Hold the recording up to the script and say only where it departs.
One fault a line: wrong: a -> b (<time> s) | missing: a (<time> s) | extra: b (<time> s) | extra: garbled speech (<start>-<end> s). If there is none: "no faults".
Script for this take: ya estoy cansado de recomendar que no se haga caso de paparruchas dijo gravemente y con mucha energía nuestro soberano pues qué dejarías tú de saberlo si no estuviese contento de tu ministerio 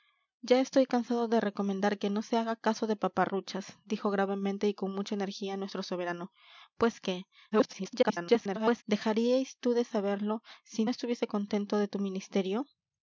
extra: garbled speech (7.5-8.8 s)
missing: no (10.8 s)